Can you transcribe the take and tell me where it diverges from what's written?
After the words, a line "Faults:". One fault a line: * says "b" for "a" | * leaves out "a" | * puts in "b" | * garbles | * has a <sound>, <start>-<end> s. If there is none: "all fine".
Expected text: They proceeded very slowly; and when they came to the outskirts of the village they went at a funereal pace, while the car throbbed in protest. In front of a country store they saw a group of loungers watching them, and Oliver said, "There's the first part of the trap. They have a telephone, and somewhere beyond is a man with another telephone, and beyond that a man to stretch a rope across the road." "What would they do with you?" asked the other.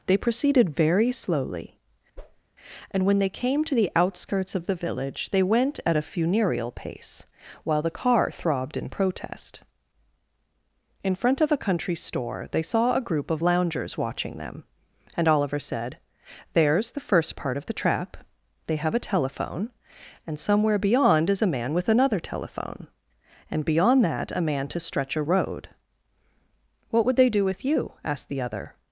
They proceeded very slowly; and when they came to the outskirts of the village they went at a funereal pace, while the car throbbed in protest. In front of a country store they saw a group of loungers watching them, and Oliver said, "There's the first part of the trap. They have a telephone, and somewhere beyond is a man with another telephone, and beyond that a man to stretch a road." "What would they do with you?" asked the other.
Faults:
* has a whoosh, 2.2-2.4 s
* leaves out "rope across the"